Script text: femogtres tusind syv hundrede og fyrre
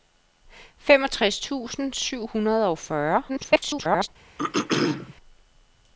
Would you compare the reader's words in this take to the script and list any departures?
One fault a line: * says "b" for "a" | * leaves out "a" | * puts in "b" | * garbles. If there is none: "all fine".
* garbles